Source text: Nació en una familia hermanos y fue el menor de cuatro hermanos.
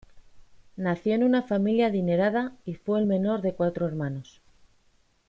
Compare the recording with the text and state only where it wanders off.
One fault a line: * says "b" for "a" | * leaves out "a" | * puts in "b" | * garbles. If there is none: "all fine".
* says "adinerada" for "hermanos"